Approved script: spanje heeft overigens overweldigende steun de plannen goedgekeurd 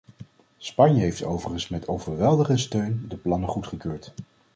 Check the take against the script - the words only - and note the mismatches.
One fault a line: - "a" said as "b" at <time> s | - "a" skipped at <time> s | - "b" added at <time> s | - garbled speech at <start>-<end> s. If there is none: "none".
- "met" added at 1.7 s